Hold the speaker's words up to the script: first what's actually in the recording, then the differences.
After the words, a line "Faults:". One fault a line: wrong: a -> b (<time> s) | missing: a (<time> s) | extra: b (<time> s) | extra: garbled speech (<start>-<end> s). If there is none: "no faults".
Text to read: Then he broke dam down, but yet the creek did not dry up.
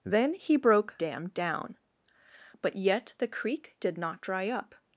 Then he broke dam down, but yet the creek did not dry up.
Faults:
no faults